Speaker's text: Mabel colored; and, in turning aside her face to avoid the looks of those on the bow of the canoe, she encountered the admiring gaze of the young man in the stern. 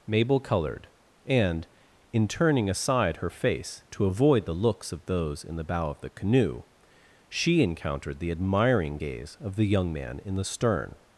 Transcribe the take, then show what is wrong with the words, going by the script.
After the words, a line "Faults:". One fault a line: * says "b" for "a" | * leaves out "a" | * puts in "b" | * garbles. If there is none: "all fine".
Mabel colored; and, in turning aside her face to avoid the looks of those in the bow of the canoe, she encountered the admiring gaze of the young man in the stern.
Faults:
* says "in" for "on"